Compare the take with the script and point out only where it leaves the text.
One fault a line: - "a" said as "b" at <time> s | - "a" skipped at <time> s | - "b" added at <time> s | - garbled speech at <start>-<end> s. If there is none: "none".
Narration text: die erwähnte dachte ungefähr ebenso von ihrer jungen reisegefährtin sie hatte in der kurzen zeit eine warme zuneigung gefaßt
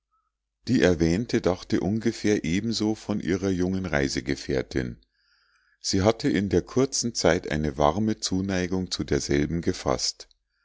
- "zu derselben" added at 8.9 s